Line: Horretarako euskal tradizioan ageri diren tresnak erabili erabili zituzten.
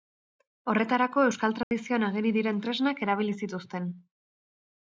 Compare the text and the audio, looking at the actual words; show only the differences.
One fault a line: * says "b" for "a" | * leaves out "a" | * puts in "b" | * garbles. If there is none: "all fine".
* leaves out "erabili"